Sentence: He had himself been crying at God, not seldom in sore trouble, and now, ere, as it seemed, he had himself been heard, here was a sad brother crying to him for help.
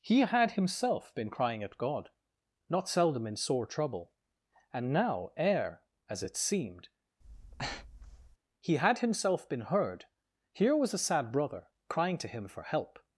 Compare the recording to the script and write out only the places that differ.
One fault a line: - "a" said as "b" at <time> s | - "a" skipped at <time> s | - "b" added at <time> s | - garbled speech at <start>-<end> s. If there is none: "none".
none